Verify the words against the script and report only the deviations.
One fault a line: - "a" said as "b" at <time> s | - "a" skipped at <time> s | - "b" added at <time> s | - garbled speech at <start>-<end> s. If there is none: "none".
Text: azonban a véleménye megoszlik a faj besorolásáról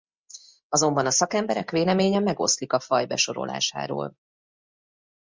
- "szakemberek" added at 1.1 s